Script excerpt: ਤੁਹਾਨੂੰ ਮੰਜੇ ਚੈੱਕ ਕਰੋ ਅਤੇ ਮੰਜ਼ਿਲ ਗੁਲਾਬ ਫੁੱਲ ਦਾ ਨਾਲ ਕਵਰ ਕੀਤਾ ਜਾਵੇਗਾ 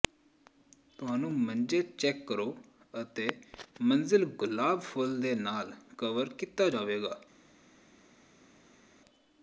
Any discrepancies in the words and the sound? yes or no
yes